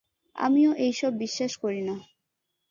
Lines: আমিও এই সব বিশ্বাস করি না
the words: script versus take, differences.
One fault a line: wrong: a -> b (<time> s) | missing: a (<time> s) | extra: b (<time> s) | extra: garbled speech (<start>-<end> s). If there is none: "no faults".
no faults